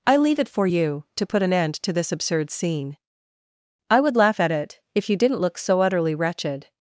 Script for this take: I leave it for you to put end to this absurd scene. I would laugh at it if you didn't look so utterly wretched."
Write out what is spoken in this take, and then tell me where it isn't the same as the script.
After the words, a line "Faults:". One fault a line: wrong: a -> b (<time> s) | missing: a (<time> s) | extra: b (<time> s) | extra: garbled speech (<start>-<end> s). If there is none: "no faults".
I leave it for you to put an end to this absurd scene. I would laugh at it if you didn't look so utterly wretched."
Faults:
extra: an (1.4 s)